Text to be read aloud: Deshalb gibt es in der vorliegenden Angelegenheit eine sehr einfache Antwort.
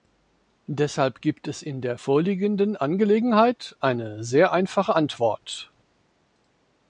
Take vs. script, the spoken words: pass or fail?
pass